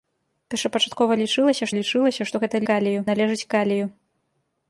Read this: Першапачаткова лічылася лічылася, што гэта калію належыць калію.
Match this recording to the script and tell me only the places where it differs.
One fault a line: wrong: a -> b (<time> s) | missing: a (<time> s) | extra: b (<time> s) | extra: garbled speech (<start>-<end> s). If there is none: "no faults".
no faults